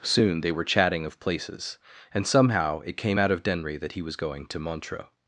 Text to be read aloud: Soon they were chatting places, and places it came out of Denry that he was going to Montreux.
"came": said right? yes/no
yes